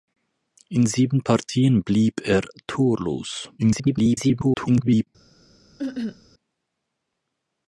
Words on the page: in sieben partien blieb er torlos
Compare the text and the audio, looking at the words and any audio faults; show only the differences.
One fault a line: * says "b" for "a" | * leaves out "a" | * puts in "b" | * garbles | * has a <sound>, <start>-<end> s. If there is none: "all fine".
* garbles
* has a cough, 5.8-6.2 s